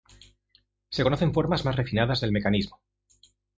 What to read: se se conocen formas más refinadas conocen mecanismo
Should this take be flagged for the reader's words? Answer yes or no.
yes